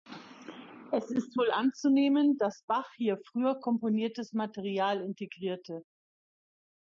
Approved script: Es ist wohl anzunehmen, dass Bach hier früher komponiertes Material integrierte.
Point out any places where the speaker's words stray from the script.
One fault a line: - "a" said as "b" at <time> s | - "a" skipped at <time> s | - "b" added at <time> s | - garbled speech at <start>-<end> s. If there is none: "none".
none